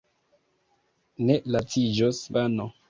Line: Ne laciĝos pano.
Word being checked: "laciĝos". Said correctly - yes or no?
yes